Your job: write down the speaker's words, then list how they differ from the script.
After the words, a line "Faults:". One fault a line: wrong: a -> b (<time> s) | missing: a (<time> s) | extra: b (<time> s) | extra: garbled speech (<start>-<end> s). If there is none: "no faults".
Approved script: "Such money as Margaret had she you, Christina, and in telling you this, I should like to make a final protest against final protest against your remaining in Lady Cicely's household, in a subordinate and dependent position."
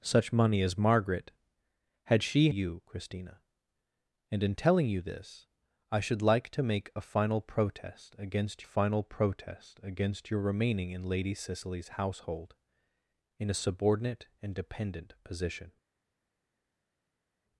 "Such money as Margaret had she you, Christina, and in telling you this, I should like to make a final protest against final protest against your remaining in Lady Cicely's household, in a subordinate and dependent position."
Faults:
no faults